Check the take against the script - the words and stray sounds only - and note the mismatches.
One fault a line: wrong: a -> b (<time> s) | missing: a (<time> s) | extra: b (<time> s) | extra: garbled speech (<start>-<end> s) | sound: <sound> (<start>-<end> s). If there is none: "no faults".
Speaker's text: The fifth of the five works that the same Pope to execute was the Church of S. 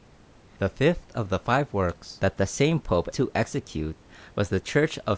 no faults